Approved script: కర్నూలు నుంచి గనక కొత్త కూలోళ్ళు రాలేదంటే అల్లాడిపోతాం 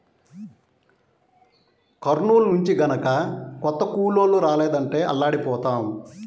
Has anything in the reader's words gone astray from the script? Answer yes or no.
no